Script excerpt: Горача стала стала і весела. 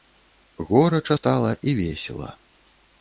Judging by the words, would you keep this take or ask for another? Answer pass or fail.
fail